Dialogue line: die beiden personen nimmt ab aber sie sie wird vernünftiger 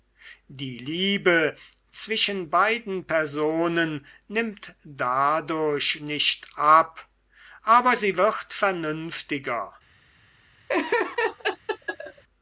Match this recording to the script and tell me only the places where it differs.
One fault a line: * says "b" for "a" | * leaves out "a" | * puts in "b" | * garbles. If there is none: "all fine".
* puts in "liebe zwischen"
* puts in "dadurch nicht"
* leaves out "sie"